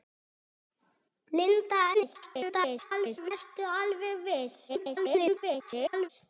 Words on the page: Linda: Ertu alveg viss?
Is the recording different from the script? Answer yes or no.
yes